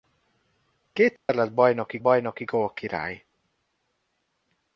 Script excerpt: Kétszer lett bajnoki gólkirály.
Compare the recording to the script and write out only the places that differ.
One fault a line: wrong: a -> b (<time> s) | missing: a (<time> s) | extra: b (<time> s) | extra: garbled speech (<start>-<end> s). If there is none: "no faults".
extra: bajnoki (2.0 s)